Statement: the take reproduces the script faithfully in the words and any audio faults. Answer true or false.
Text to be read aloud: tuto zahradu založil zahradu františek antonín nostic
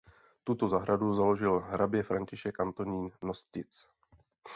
false